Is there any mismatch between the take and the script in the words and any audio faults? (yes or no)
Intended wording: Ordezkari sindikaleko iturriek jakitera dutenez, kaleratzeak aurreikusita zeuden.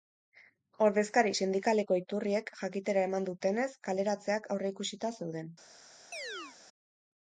yes